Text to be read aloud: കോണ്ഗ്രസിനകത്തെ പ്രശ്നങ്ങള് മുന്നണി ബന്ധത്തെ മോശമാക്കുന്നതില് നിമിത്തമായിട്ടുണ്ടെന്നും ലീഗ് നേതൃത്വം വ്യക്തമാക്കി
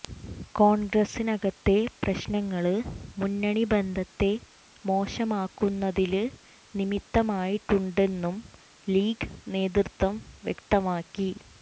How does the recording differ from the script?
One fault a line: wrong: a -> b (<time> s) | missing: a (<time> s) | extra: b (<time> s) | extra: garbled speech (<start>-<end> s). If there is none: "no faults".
no faults